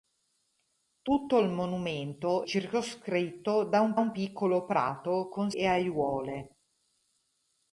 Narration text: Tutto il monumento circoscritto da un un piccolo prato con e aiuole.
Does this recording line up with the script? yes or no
yes